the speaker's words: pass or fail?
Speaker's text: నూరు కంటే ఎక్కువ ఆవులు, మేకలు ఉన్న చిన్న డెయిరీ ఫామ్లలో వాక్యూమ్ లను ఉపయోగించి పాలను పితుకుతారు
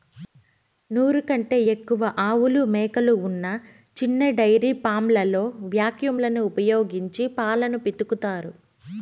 pass